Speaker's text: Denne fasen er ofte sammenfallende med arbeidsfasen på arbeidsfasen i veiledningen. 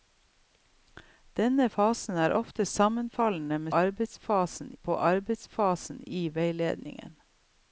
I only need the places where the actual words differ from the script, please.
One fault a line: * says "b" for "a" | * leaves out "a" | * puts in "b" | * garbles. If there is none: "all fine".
all fine